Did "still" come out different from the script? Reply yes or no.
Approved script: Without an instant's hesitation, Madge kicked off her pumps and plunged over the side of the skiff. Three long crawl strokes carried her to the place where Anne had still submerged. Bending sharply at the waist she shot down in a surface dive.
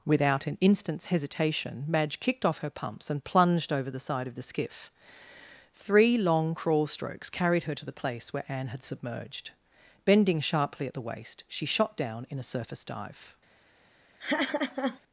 yes